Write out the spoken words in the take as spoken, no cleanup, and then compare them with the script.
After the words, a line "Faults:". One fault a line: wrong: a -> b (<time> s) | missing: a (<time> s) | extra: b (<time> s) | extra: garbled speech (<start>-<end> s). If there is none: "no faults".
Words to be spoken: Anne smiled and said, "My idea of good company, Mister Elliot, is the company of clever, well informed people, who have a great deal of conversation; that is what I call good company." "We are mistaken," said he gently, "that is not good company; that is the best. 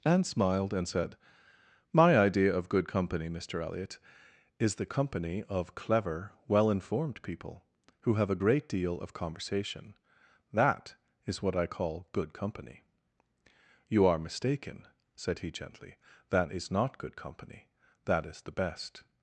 Anne smiled and said, "My idea of good company, Mister Elliot, is the company of clever, well informed people, who have a great deal of conversation; that is what I call good company." "You are mistaken," said he gently, "that is not good company; that is the best.
Faults:
wrong: We -> You (13.9 s)